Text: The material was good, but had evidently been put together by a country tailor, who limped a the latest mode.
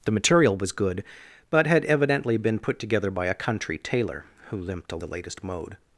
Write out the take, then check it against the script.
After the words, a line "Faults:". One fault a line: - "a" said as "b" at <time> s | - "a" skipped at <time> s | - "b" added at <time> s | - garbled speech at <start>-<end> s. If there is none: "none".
The material was good, but had evidently been put together by a country tailor, who limped a the latest mode.
Faults:
none